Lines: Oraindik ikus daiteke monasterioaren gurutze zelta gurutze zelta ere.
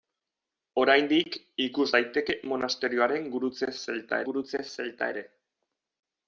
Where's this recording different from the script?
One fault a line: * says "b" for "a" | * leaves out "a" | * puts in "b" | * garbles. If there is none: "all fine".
all fine